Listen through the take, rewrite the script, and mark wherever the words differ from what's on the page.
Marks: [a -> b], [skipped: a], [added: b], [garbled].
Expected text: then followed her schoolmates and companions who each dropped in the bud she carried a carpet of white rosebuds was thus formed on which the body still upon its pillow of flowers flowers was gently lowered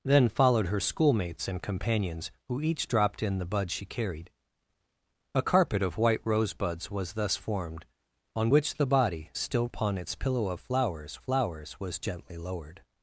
then followed her schoolmates and companions who each dropped in the bud she carried a carpet of white rosebuds was thus formed on which the body still upon its pillow of flowers flowers was gently lowered